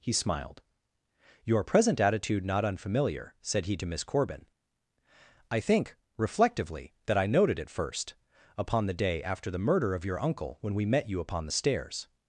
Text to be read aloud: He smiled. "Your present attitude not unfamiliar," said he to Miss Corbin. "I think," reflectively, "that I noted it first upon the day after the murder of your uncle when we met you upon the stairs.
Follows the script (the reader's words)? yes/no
yes